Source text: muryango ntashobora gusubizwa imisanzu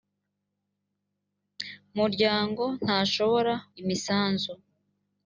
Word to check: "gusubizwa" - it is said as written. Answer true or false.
false